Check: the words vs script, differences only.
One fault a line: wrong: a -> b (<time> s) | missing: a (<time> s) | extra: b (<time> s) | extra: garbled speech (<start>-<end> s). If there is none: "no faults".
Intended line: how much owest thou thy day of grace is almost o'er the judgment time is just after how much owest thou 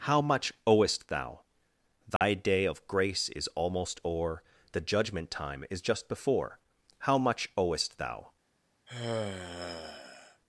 wrong: after -> before (6.1 s)